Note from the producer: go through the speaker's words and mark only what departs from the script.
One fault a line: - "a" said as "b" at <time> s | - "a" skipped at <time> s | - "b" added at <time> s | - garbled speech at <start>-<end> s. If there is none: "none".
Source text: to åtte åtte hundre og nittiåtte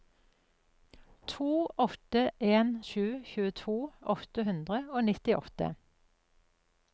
- "en sju tjueto" added at 2.4 s